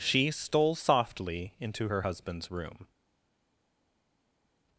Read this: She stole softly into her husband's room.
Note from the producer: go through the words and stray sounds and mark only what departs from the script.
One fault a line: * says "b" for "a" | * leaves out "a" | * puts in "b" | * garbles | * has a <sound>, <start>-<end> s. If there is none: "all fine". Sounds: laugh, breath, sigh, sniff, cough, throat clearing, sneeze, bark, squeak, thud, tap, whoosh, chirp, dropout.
all fine